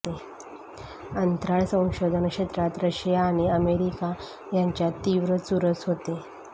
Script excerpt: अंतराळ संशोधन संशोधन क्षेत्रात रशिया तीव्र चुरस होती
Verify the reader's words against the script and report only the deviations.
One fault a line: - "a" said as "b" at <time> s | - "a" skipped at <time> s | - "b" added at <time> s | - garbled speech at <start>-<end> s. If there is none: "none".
- "संशोधन" skipped at 2.3 s
- "आणि अमेरिका यांच्यात" added at 3.2 s